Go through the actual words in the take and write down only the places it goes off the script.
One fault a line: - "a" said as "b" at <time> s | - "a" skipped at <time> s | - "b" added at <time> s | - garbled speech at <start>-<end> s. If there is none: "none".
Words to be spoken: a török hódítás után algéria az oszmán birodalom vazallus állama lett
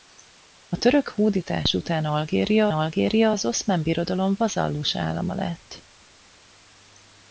- "algéria" added at 2.7 s